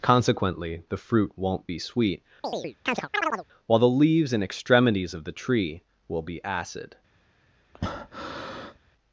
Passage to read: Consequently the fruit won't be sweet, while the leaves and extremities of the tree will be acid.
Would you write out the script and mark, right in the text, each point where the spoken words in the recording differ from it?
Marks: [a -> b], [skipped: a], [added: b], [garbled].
Consequently the fruit won't be sweet, while the leaves and extremities of the tree will be acid.